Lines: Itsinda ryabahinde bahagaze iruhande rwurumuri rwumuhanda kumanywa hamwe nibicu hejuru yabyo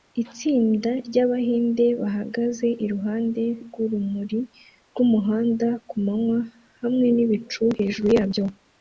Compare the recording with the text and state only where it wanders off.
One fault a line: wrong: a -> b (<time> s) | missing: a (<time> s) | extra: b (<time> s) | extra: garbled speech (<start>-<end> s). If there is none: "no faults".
no faults